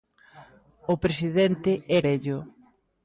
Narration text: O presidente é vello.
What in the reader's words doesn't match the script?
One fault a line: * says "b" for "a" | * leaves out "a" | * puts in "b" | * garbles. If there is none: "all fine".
all fine